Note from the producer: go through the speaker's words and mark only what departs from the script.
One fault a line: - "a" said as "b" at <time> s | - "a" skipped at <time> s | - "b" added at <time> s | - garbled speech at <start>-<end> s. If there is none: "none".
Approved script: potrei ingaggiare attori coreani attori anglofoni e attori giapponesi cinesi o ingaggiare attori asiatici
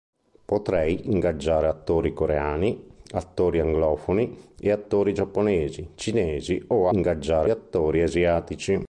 none